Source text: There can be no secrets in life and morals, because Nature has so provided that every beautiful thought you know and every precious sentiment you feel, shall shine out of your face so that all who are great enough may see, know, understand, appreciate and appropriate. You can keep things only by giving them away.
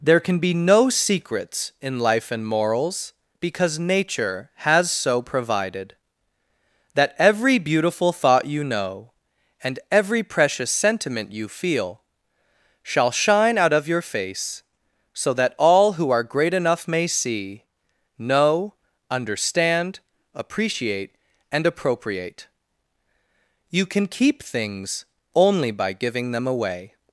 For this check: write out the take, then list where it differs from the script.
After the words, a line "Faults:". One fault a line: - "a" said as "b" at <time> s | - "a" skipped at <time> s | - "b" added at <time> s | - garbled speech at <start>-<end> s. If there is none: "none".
There can be no secrets in life and morals, because Nature has so provided that every beautiful thought you know and every precious sentiment you feel, shall shine out of your face so that all who are great enough may see, know, understand, appreciate and appropriate. You can keep things only by giving them away.
Faults:
none